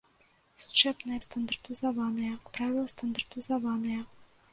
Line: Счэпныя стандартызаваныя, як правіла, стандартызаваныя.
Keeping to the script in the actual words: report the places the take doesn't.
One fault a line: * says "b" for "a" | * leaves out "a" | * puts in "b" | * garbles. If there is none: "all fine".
all fine